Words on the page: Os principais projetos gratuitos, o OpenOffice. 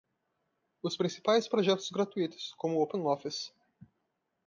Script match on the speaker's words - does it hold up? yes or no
no